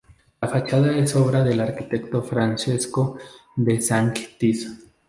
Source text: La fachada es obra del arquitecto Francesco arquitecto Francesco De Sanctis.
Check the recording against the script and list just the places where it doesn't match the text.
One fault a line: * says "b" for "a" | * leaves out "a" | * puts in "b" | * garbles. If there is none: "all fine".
* leaves out "arquitecto Francesco"